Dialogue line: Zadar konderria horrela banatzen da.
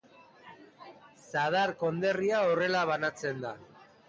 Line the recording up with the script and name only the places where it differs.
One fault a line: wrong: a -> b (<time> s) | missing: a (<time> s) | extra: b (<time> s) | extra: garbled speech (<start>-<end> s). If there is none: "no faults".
no faults